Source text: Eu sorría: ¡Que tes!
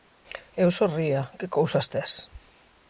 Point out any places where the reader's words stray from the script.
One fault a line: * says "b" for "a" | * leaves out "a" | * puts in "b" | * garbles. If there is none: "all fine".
* puts in "cousas"